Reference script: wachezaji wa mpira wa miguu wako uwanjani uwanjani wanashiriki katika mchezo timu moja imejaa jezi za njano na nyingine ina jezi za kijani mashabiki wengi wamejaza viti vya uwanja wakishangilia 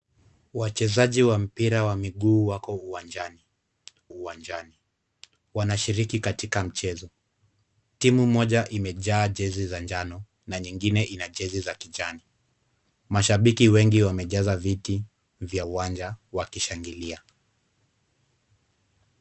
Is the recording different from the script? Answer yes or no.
no